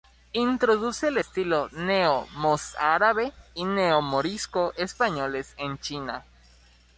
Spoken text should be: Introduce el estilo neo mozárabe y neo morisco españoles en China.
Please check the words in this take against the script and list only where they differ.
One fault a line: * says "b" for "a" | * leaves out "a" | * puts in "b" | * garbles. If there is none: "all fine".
all fine